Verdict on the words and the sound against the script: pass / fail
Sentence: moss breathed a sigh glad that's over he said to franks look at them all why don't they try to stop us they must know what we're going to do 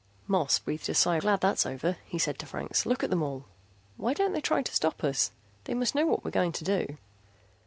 pass